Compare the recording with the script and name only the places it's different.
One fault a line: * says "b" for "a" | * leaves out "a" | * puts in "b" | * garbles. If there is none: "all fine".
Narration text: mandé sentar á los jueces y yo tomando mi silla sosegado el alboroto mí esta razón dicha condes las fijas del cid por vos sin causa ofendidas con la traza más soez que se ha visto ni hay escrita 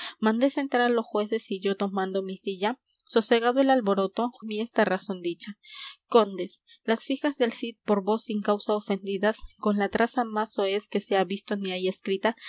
all fine